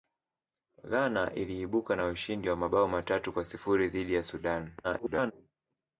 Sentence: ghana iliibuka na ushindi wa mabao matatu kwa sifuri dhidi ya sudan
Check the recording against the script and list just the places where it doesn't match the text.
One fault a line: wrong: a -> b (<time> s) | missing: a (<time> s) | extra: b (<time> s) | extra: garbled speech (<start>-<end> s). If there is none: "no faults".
extra: garbled speech (4.8-5.3 s)